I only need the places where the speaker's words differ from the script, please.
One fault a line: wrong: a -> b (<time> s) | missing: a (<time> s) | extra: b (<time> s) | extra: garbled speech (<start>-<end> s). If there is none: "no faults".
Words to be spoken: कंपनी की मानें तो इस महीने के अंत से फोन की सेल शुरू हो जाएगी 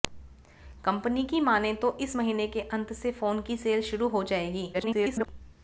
extra: garbled speech (4.7-5.3 s)